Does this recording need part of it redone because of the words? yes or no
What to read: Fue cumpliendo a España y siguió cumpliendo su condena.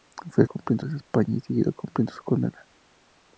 no